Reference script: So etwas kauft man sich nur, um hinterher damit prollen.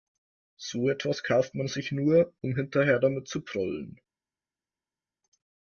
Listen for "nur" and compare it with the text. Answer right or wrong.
right